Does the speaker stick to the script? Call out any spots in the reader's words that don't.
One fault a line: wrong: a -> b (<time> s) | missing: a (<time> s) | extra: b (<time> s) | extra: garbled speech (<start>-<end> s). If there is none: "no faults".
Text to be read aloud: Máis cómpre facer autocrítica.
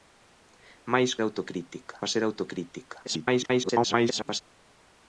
wrong: cómpre -> autocrítica (1.2 s)
extra: garbled speech (3.0-4.4 s)